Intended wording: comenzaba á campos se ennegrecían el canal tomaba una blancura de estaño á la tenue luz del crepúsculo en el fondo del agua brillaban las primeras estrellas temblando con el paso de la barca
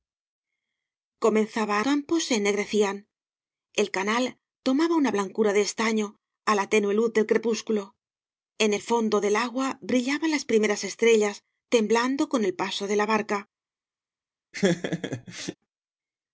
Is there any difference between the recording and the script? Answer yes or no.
no